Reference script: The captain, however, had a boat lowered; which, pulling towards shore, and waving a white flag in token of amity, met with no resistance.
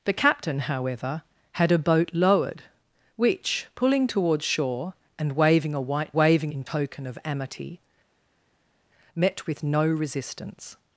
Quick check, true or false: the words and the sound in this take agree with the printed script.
false